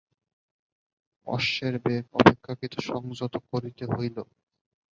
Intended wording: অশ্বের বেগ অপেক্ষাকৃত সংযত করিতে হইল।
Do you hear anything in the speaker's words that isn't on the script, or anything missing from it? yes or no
no